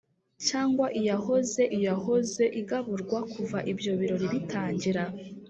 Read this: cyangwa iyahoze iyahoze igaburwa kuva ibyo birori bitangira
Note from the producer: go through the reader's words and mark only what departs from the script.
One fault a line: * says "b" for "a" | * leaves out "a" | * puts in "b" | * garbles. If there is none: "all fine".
all fine